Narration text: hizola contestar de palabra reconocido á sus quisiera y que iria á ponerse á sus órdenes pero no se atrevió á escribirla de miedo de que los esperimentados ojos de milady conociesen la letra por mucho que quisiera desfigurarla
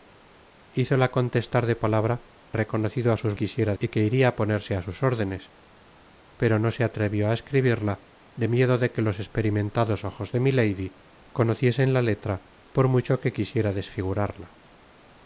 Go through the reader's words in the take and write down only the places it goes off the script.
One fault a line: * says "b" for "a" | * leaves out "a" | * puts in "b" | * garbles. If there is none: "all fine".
all fine